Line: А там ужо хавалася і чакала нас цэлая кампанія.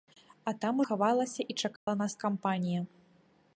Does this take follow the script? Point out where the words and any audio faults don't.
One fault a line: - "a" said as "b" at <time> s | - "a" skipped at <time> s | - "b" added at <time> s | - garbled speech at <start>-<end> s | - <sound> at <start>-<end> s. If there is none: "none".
- "ужо" skipped at 0.8 s
- dropout at 1.8-1.9 s
- "цэлая" skipped at 2.1 s